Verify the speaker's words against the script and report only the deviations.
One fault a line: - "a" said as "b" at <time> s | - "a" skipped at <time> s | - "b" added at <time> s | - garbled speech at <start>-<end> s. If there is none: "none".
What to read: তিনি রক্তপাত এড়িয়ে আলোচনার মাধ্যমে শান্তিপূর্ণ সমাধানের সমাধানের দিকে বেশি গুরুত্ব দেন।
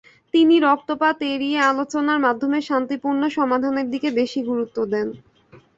- "সমাধানের" skipped at 3.9 s